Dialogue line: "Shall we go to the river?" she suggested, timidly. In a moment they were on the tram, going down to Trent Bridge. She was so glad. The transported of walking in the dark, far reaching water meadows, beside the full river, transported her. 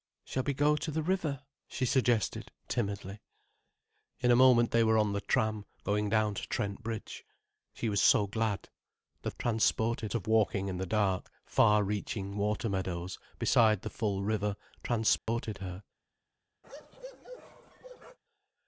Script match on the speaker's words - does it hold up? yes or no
yes